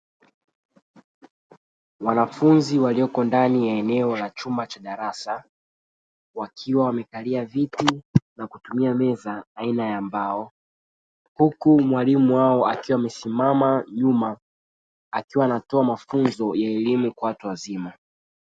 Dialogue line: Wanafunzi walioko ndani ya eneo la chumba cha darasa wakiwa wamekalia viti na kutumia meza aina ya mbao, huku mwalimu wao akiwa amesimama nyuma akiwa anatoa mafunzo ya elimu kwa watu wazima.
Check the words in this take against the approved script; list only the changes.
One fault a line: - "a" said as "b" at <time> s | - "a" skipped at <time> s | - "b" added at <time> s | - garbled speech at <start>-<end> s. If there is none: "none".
none